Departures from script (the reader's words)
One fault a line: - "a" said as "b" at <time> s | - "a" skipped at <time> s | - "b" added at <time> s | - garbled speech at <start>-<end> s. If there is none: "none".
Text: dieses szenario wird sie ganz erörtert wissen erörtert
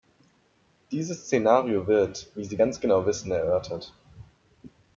- "wie" added at 2.3 s
- "erörtert" said as "genau" at 2.8 s